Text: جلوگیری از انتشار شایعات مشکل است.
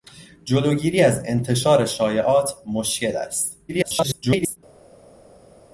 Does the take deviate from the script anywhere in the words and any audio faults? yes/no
yes